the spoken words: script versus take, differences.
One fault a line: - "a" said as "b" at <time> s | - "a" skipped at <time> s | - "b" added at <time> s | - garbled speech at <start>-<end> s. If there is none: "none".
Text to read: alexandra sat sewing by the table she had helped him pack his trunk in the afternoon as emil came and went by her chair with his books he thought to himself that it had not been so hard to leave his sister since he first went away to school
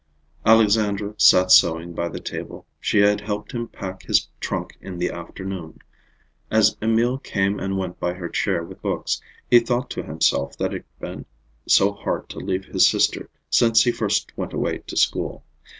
- "his" skipped at 8.8 s
- "had not" skipped at 10.8 s